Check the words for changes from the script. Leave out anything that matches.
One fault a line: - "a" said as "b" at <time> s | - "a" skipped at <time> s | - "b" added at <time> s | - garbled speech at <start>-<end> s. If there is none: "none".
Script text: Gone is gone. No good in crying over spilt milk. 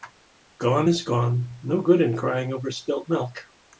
none